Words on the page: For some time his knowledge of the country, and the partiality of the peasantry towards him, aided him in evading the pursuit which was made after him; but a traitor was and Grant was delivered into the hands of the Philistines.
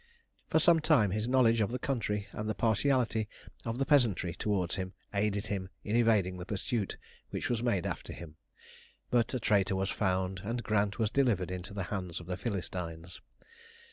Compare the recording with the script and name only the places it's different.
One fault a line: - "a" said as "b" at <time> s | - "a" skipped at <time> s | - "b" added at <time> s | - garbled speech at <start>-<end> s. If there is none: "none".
- "found" added at 9.9 s